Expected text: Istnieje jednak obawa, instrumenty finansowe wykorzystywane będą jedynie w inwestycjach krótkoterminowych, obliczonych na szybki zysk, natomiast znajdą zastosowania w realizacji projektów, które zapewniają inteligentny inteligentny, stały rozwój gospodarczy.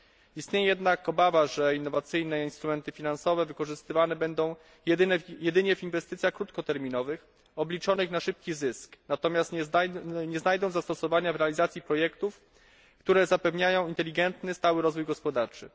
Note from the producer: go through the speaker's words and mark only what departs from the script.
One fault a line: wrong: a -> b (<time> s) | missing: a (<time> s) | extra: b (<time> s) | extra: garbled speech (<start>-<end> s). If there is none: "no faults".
extra: że innowacyjne (1.5 s)
extra: nie (10.3 s)
missing: inteligentny (14.5 s)